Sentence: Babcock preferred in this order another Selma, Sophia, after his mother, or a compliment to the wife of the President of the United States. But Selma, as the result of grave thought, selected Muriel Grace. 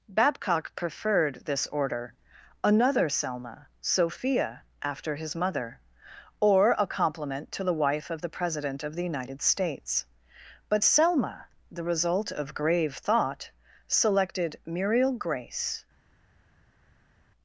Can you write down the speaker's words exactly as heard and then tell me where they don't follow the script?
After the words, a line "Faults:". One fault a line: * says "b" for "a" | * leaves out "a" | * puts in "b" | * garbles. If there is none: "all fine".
Babcock preferred this order another Selma, Sophia, after his mother, or a compliment to the wife of the President of the United States. But Selma, the result of grave thought, selected Muriel Grace.
Faults:
* leaves out "in"
* leaves out "as"